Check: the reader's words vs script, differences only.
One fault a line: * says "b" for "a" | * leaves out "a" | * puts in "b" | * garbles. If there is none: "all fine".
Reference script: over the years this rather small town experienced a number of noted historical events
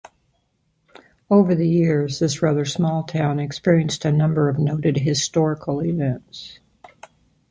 all fine